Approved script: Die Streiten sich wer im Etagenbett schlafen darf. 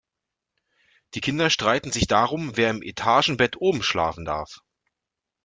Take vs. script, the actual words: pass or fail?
fail